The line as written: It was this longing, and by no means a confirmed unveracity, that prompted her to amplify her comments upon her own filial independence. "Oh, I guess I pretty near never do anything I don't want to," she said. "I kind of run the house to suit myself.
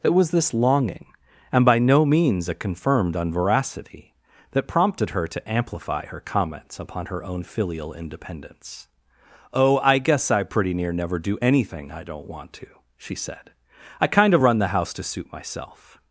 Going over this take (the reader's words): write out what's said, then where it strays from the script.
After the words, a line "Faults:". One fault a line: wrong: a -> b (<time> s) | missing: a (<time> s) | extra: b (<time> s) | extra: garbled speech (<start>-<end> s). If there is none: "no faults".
It was this longing, and by no means a confirmed unveracity, that prompted her to amplify her comments upon her own filial independence. "Oh, I guess I pretty near never do anything I don't want to," she said. "I kind of run the house to suit myself.
Faults:
no faults